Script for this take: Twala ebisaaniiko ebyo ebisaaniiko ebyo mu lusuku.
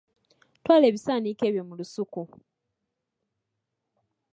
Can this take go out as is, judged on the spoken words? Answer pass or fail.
fail